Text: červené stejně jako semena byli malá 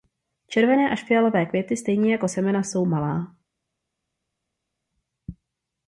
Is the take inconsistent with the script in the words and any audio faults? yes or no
yes